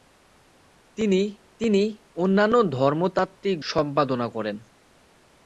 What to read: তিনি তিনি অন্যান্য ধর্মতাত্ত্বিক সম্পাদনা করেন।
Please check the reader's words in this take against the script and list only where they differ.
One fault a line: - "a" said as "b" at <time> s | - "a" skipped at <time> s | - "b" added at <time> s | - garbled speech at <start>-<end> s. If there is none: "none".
none